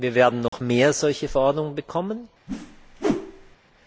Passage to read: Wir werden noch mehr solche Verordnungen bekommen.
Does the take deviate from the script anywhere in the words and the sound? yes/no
yes